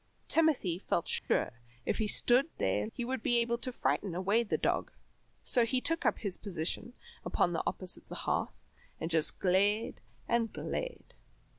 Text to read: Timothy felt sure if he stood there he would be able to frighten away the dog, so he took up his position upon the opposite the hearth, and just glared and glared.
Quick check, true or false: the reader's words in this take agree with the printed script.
true